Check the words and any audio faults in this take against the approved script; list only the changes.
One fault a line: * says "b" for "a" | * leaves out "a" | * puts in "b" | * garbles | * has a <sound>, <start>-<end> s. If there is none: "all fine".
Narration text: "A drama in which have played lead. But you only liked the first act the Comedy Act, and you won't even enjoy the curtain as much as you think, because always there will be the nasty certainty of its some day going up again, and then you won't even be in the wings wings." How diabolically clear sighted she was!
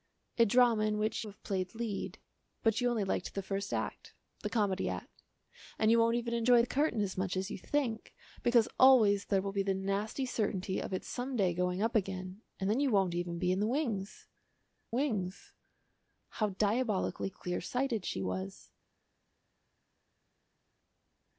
all fine